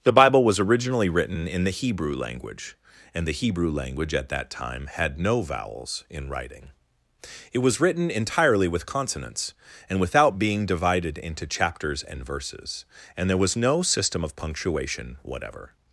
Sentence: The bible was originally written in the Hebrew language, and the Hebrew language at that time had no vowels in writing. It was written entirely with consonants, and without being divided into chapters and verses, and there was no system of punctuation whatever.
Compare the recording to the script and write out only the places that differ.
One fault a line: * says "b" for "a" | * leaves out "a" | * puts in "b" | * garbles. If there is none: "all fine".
all fine